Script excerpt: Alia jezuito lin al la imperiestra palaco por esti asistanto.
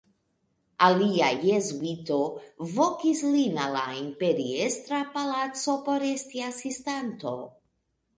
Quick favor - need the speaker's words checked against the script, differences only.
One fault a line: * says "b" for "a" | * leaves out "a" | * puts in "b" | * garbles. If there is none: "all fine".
* puts in "vokis"